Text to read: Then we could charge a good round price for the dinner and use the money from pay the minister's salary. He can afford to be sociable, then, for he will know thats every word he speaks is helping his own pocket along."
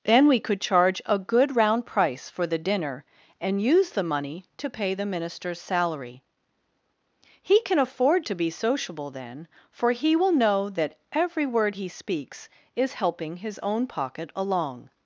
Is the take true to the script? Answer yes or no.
no